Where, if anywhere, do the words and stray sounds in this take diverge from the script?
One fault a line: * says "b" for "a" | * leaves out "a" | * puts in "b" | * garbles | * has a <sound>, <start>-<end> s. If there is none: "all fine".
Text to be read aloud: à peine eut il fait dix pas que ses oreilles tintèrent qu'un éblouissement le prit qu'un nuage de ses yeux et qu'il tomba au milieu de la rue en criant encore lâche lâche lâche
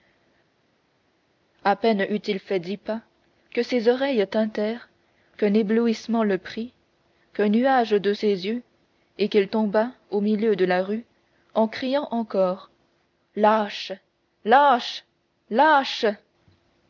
all fine